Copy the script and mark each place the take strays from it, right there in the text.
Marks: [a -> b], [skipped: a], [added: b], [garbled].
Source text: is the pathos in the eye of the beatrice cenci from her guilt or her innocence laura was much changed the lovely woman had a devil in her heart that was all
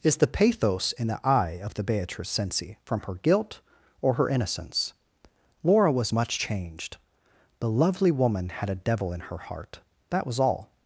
is the pathos in the eye of the beatrice cenci from her guilt or her innocence laura was much changed the lovely woman had a devil in her heart that was all